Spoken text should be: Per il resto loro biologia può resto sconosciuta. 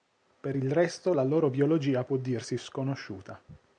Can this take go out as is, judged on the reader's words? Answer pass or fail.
fail